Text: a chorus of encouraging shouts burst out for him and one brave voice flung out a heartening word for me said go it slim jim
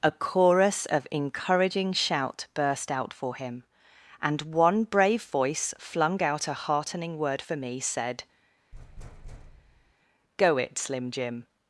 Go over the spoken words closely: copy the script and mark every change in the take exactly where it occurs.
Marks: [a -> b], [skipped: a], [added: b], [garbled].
a chorus of encouraging [shouts -> shout] burst out for him and one brave voice flung out a heartening word for me said go it slim jim